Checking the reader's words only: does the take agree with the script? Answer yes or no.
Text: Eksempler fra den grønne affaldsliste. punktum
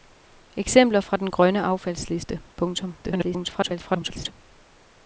no